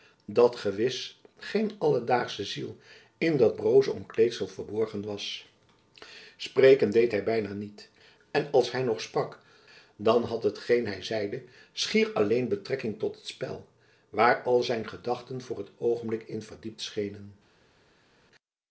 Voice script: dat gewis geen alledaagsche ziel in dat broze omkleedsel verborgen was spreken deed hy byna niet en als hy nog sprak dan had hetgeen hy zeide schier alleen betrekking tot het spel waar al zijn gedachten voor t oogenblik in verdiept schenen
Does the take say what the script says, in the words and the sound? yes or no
yes